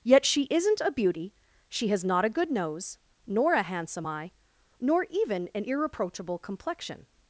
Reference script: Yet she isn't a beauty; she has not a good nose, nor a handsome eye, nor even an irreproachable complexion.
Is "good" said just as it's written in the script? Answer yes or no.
yes